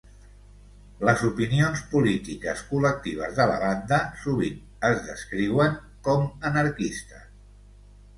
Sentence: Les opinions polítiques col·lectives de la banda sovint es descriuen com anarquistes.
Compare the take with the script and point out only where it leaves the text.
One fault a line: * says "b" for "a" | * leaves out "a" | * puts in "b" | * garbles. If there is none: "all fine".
all fine